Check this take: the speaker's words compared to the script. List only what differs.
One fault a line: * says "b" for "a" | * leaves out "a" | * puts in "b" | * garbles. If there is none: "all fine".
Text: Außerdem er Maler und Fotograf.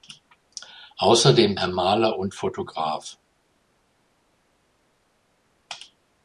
all fine